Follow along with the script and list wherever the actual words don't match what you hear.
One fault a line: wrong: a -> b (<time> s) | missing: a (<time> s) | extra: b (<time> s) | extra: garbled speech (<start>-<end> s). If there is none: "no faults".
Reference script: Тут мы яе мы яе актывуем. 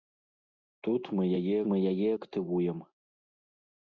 no faults